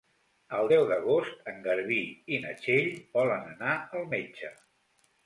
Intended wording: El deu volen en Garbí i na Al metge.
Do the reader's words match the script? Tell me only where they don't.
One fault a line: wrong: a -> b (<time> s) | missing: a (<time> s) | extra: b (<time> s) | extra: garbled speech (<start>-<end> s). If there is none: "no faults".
wrong: volen -> d'agost (0.9 s)
extra: Txell volen anar (2.6 s)